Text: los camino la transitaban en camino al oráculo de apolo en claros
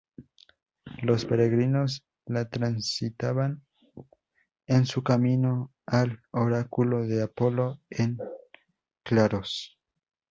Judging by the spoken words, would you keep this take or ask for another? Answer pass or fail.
fail